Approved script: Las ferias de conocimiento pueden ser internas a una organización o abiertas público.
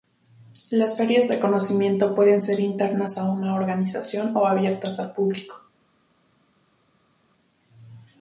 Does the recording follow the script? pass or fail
fail